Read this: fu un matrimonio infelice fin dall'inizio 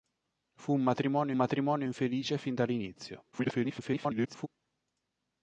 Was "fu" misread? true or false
false